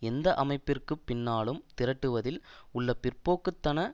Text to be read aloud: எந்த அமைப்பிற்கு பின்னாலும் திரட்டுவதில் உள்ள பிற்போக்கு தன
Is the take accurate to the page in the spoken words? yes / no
yes